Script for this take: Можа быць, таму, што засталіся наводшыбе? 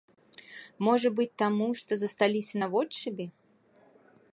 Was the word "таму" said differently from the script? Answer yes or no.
no